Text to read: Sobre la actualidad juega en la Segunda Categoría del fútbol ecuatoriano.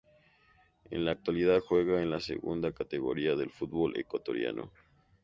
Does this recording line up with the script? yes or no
no